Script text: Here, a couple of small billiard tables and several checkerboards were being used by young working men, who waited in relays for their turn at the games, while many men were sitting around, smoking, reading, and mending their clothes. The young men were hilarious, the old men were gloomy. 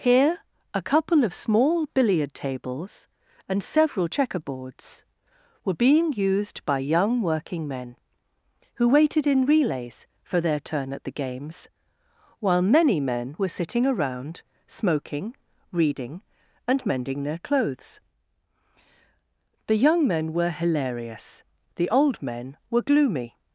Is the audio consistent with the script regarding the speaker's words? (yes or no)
yes